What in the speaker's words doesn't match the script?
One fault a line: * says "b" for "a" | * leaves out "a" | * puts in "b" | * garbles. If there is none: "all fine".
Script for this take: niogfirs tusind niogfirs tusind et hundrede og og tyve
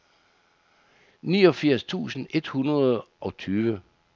* leaves out "niogfirs tusind"
* leaves out "og"